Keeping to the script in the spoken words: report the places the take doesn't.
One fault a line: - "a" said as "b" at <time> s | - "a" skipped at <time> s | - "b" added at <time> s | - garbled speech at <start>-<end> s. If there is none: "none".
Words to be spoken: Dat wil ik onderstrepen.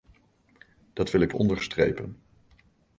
none